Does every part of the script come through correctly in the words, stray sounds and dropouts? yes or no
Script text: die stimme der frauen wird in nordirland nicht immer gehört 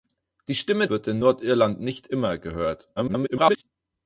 no